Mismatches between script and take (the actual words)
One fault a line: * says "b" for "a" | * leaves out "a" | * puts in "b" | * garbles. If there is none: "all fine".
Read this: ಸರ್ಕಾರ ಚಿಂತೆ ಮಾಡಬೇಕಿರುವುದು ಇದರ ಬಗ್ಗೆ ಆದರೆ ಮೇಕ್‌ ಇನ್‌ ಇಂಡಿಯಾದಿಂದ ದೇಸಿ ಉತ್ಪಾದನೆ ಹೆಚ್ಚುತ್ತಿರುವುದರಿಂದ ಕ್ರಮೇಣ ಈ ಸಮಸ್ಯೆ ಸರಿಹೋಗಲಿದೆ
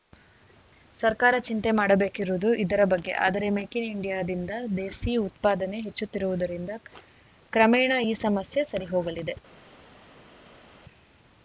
all fine